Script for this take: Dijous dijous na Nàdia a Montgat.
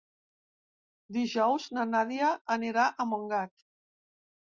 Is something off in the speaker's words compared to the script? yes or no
yes